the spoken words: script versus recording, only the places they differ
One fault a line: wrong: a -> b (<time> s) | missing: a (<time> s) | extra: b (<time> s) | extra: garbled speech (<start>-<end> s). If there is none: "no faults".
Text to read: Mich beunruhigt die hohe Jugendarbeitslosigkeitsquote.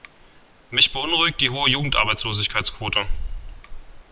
no faults